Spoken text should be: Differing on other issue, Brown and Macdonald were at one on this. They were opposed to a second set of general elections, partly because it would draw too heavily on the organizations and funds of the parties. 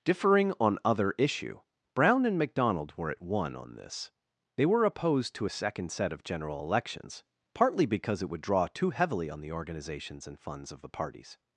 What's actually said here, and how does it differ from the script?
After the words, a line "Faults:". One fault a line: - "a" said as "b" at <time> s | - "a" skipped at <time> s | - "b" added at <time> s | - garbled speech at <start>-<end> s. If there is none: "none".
Differing on other issue, Brown and Macdonald were at one on this. They were opposed to a second set of general elections, partly because it would draw too heavily on the organizations and funds of the parties.
Faults:
none